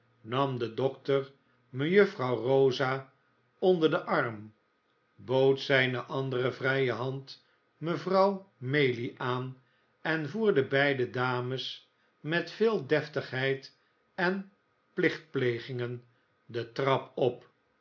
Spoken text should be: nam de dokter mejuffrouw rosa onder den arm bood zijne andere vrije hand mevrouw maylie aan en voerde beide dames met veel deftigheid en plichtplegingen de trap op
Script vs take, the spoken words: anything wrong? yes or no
no